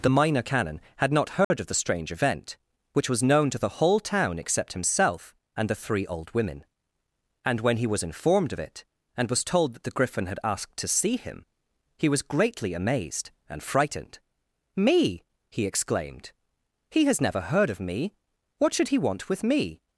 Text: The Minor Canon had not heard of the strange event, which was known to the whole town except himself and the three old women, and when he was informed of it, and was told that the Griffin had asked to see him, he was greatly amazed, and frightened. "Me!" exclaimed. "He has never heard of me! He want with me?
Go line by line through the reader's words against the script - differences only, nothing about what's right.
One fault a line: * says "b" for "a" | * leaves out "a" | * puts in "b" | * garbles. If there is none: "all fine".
* puts in "he"
* puts in "What should"